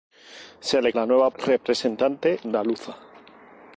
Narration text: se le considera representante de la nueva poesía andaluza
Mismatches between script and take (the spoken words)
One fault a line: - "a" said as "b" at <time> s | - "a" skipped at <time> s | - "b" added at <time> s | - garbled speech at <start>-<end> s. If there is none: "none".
- "considera representante de" skipped at 0.9 s
- "poesía" said as "representante" at 1.3 s